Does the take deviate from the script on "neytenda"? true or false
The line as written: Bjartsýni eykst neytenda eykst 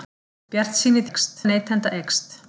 false